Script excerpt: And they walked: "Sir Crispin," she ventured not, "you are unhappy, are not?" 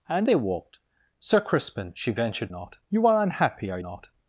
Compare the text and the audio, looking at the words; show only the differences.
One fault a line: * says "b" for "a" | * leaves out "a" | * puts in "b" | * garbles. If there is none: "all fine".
all fine